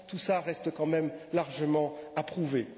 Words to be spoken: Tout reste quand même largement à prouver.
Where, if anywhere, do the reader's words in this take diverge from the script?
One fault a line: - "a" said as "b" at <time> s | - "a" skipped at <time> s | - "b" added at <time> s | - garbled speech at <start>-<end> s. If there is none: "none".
- "cela" added at 0.2 s